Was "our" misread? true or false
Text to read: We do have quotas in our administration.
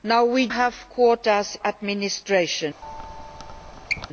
true